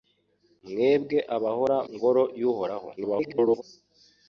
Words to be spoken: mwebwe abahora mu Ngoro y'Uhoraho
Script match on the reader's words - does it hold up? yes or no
no